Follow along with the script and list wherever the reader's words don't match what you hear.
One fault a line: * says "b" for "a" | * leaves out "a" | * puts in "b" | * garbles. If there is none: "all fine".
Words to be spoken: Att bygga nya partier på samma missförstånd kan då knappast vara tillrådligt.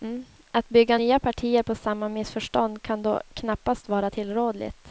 all fine